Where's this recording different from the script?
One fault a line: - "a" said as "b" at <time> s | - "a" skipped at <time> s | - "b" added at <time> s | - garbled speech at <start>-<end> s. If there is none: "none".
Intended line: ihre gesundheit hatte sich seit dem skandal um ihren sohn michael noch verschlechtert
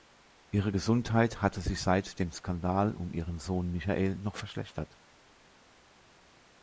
none